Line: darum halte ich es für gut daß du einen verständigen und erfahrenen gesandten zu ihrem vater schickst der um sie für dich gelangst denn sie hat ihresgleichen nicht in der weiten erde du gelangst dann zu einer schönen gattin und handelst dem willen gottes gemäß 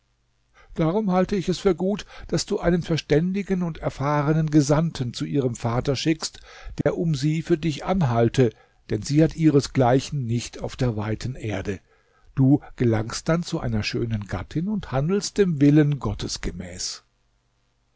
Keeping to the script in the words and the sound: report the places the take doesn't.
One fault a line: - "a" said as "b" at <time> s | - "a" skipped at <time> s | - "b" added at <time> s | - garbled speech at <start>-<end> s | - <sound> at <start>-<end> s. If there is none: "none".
- dropout at 6.8-6.9 s
- "gelangst" said as "anhalte" at 7.8 s
- "in" said as "auf" at 10.6 s